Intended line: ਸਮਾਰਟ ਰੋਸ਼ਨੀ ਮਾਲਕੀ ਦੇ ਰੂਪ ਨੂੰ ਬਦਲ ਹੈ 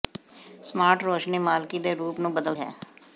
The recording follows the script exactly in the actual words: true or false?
true